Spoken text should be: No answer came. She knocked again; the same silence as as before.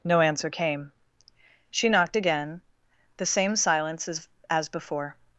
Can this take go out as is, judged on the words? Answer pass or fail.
pass